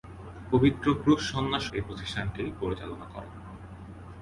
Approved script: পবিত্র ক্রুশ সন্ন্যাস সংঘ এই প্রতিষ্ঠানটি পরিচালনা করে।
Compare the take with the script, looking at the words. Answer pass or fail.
fail